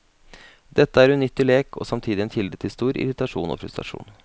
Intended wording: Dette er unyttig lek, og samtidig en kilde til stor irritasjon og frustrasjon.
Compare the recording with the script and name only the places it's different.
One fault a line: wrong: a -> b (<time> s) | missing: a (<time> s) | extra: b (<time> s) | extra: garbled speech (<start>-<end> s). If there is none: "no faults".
no faults